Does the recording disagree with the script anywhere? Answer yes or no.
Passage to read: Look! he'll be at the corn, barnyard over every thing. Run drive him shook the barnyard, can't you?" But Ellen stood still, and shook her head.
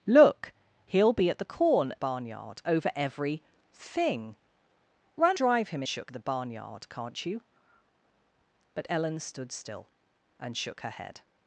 no